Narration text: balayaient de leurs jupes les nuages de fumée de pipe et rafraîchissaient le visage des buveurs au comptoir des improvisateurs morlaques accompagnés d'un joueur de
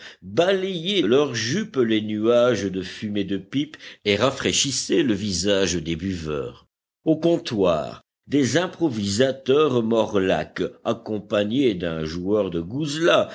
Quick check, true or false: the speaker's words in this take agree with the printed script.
false